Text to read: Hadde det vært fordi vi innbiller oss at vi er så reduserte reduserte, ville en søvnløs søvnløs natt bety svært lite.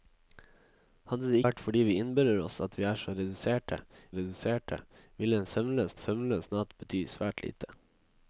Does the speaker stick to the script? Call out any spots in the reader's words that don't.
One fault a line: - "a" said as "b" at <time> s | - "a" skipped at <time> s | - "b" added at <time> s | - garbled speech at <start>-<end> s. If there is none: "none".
none